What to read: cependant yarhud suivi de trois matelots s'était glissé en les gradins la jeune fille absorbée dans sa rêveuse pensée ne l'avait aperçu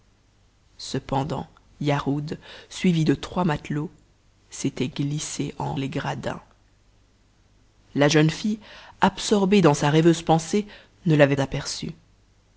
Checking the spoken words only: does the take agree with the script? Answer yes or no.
yes